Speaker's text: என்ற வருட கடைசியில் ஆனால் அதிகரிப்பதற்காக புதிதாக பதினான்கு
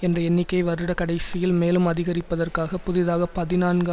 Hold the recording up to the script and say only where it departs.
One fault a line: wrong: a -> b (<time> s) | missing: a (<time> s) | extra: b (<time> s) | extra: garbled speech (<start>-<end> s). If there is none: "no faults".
extra: எண்ணிக்கையை (0.2 s)
wrong: ஆனால் -> மேலும் (1.6 s)